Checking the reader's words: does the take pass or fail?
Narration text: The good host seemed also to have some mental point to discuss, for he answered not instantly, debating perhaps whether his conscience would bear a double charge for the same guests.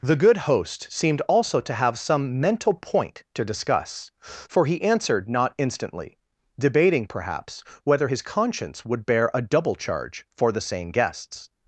pass